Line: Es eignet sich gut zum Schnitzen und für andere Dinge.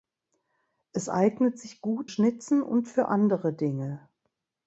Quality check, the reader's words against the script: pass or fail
fail